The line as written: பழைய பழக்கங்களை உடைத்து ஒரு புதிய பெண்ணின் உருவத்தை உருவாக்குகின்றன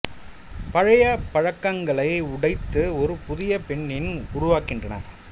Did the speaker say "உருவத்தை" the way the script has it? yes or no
no